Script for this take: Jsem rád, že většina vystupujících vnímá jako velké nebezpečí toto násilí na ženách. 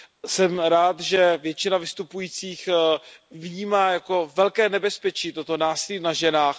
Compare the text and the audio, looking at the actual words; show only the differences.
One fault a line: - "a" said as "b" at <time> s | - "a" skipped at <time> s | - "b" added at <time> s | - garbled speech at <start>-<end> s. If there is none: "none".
none